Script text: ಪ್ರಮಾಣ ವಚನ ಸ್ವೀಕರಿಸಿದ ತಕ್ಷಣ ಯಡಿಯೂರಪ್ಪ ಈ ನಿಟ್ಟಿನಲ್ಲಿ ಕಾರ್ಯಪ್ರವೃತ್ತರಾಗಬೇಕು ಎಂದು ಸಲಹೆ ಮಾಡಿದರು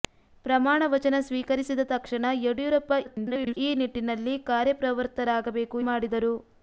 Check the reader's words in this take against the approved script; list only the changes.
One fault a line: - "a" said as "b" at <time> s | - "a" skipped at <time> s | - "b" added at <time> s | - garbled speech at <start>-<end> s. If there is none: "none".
- garbled speech at 3.0-3.6 s
- "ಎಂದು ಸಲಹೆ" skipped at 5.8 s